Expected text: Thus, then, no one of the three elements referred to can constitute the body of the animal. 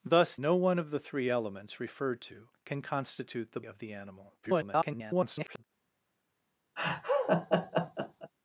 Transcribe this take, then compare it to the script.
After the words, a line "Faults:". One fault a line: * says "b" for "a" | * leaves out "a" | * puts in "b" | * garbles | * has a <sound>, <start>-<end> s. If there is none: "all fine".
Thus, no one of the three elements referred to can constitute the of the animal. [garbled]
Faults:
* leaves out "then"
* leaves out "body"
* garbles
* has a laugh, 6.8-8.3 s